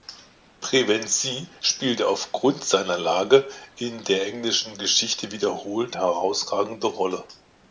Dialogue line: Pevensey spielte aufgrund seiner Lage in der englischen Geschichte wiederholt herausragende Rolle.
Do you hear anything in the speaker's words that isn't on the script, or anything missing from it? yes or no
no